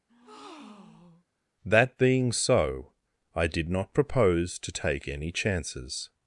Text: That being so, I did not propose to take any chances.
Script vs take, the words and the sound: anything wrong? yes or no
yes